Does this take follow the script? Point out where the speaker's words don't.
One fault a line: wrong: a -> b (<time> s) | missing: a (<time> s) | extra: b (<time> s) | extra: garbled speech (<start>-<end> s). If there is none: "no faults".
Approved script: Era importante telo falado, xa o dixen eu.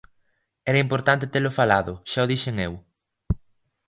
no faults